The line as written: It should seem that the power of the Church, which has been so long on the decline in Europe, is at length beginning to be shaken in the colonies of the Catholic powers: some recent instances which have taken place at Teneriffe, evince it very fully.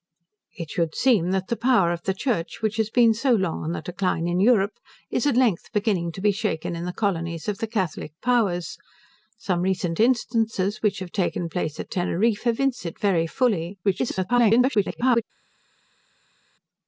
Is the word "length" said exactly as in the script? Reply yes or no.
yes